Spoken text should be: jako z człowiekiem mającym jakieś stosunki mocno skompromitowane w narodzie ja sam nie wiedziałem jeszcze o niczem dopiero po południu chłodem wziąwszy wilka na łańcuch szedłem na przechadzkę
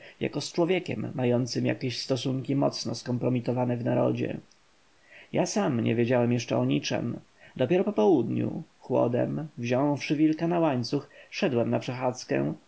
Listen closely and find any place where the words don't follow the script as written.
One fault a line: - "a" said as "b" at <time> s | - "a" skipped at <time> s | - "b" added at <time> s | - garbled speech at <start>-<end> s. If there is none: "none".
none